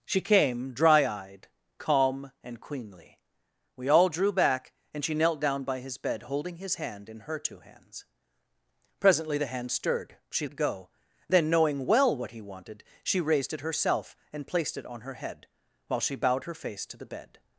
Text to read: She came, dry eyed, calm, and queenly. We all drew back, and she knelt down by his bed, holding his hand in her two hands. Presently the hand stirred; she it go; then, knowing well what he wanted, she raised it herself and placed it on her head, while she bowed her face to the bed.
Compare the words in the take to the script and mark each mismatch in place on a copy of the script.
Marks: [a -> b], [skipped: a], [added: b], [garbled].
She came, dry eyed, calm, and queenly. We all drew back, and she knelt down by his bed, holding his hand in her two hands. Presently the hand stirred; she it go; then, knowing well what he wanted, she raised it herself and placed it on her head, while she bowed her face to the bed.